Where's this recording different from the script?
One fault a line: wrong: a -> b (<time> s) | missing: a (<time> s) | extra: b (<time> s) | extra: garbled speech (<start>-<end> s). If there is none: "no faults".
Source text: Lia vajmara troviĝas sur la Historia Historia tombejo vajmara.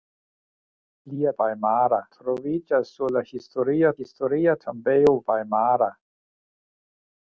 no faults